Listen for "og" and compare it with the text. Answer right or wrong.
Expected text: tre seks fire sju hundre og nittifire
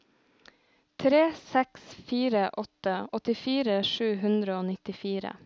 right